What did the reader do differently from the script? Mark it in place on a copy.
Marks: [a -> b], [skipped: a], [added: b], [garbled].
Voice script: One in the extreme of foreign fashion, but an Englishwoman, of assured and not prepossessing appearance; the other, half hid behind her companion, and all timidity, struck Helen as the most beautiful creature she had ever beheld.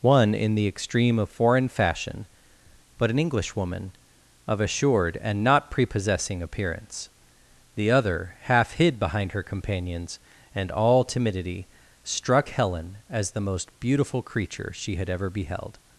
One in the extreme of foreign fashion, but an Englishwoman, of assured and not prepossessing appearance; the other, half hid behind her [companion, -> companions] and all timidity, struck Helen as the most beautiful creature she had ever beheld.